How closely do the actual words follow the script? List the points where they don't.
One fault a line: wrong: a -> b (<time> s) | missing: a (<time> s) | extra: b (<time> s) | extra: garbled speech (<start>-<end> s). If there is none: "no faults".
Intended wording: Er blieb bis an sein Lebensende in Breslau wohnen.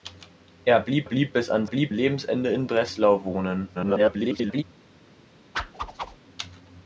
extra: blieb (1.0 s)
wrong: sein -> blieb (1.6 s)
extra: garbled speech (3.7-4.6 s)